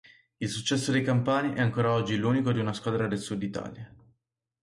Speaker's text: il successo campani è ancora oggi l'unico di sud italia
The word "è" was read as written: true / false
true